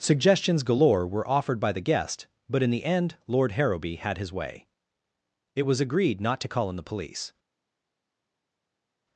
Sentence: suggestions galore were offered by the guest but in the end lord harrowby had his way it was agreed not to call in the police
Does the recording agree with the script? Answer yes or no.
yes